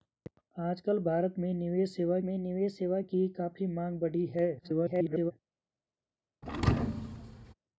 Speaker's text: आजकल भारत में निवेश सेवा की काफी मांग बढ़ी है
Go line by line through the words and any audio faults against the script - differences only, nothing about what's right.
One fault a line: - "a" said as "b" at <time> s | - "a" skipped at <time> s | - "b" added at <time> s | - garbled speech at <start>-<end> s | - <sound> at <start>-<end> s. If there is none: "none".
- "में निवेश सेवा" added at 2.2 s
- garbled speech at 4.6-5.3 s
- thud at 6.4-7.5 s